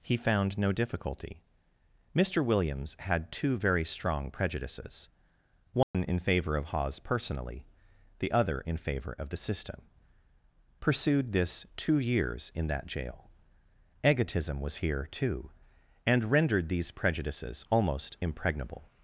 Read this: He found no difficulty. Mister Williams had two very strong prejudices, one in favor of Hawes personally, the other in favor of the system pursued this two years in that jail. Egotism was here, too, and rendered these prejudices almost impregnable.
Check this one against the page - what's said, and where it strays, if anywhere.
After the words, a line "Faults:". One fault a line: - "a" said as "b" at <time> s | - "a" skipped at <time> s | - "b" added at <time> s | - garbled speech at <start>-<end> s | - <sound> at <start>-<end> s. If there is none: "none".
He found no difficulty. Mister Williams had two very strong prejudices, one in favor of Hawes personally, the other in favor of the system pursued this two years in that jail. Egotism was here, too, and rendered these prejudices almost impregnable.
Faults:
- dropout at 5.8-5.9 s